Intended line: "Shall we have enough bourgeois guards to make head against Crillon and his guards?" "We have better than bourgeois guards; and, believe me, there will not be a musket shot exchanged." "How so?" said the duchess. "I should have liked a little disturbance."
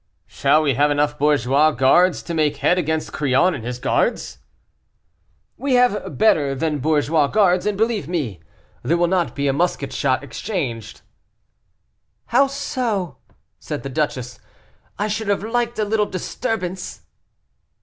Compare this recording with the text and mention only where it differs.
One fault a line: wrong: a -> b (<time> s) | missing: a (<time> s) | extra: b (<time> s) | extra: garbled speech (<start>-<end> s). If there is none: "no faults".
no faults